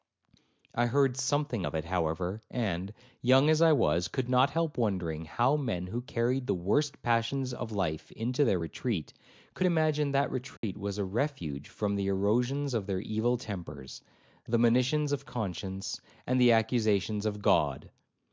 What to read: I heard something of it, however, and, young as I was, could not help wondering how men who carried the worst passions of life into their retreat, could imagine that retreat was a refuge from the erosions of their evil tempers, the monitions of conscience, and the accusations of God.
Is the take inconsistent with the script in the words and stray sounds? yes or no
yes